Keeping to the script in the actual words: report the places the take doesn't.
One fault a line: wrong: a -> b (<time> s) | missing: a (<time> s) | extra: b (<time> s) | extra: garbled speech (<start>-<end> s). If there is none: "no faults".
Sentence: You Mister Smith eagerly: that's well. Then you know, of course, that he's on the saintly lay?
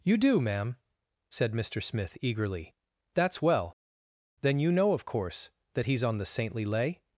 extra: do ma'am said (0.2 s)